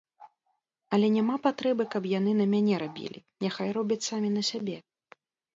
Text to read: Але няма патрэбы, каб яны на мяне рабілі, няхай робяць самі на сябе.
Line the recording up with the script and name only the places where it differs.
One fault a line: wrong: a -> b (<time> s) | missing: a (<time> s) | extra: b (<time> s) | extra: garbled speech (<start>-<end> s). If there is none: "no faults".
no faults